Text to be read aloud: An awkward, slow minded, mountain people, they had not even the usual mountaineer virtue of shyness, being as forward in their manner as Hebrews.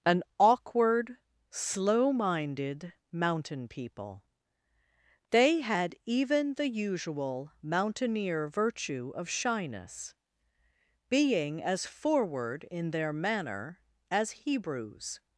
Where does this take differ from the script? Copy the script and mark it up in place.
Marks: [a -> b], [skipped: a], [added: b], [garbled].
An awkward, slow minded, mountain people, they had [skipped: not] even the usual mountaineer virtue of shyness, being as forward in their manner as Hebrews.